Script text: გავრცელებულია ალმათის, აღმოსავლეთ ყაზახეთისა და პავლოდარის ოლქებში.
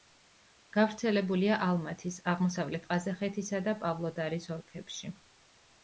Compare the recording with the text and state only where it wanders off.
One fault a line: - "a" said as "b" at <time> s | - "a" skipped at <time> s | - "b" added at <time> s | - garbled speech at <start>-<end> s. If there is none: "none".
none